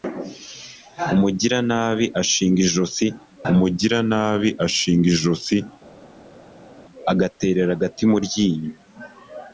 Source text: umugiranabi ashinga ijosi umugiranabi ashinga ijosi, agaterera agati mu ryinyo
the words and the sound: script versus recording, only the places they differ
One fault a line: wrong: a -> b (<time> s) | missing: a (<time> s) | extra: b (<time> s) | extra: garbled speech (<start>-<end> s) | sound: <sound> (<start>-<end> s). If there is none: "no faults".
no faults